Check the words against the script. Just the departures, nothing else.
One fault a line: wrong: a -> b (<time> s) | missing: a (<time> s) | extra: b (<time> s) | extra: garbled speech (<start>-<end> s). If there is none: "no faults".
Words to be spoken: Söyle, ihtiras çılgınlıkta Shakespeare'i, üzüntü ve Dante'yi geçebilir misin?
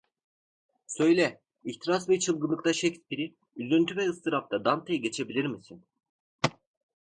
extra: ve (2.1 s)
extra: ıstırapta (4.1 s)